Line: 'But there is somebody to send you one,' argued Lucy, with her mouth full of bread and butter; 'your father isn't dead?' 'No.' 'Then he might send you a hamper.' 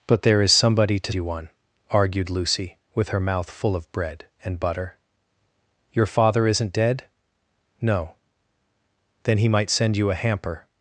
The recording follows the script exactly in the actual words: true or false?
false